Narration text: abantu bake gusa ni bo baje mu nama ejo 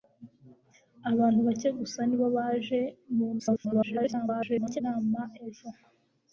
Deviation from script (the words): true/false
true